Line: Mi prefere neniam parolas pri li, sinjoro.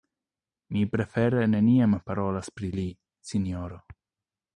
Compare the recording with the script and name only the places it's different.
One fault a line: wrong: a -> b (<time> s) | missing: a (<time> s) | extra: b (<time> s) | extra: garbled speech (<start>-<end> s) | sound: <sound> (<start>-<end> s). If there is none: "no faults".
no faults